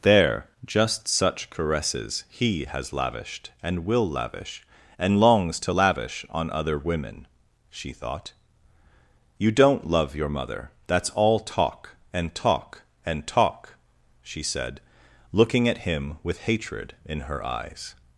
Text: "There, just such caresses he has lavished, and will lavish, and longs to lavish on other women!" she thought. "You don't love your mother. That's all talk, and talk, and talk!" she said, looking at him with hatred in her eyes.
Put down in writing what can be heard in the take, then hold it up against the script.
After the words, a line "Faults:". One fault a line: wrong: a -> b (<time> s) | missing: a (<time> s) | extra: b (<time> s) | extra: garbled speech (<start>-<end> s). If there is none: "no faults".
"There, just such caresses he has lavished, and will lavish, and longs to lavish on other women!" she thought. "You don't love your mother. That's all talk, and talk, and talk!" she said, looking at him with hatred in her eyes.
Faults:
no faults